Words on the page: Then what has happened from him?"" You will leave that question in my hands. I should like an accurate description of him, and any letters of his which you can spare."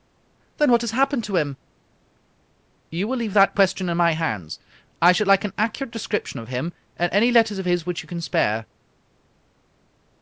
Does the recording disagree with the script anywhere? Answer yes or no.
yes